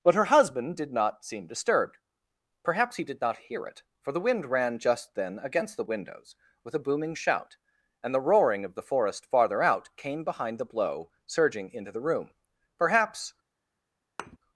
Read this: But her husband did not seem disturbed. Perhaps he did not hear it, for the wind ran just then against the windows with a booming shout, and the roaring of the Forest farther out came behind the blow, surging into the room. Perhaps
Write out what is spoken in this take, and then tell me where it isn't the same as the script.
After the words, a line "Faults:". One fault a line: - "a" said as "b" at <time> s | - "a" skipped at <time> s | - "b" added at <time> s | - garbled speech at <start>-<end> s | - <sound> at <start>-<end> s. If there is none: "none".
But her husband did not seem disturbed. Perhaps he did not hear it, for the wind ran just then against the windows with a booming shout, and the roaring of the Forest farther out came behind the blow, surging into the room. Perhaps
Faults:
- thud at 14.2-14.4 s